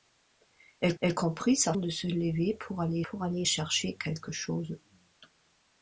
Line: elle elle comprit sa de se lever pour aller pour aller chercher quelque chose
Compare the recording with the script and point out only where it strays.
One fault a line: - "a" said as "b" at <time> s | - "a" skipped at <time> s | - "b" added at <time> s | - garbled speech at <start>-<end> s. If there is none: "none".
none